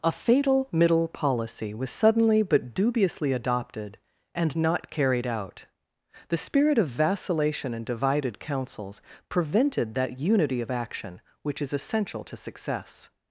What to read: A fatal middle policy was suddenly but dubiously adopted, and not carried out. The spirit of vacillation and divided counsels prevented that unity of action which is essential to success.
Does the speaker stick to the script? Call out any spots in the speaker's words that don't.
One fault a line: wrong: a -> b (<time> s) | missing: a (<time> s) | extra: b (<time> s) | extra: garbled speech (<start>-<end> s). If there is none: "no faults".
no faults